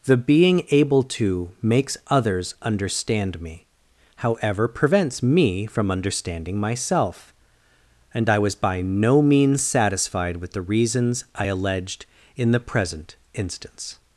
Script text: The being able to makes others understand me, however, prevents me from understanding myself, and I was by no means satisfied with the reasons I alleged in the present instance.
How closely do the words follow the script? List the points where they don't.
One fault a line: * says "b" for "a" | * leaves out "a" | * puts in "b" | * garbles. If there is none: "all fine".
all fine